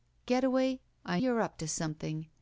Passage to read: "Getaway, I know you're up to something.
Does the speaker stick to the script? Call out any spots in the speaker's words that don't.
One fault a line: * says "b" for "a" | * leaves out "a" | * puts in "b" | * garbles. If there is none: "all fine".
* leaves out "know"